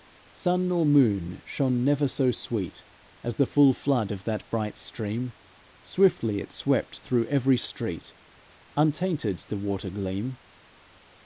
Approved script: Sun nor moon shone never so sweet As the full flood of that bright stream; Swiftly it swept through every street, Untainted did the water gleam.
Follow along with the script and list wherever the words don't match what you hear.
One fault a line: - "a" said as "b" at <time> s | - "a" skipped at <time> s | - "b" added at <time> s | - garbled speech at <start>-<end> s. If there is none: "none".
- "did" skipped at 9.4 s